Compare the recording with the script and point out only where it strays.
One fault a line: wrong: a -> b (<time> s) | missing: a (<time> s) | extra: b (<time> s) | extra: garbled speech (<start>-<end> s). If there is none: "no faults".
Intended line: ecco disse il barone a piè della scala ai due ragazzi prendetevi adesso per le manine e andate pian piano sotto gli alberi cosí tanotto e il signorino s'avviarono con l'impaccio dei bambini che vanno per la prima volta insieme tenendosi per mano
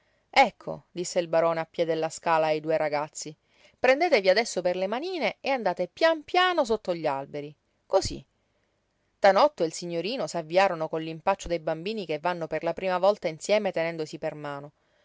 no faults